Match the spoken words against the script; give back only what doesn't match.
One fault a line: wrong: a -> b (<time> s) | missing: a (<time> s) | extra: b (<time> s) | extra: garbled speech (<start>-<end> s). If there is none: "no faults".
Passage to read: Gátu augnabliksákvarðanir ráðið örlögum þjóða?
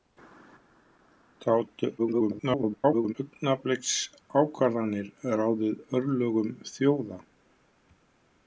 extra: garbled speech (2.0-3.1 s)